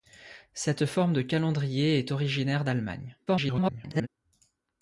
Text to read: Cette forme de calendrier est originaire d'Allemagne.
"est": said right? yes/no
yes